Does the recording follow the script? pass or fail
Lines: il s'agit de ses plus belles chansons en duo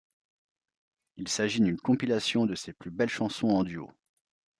fail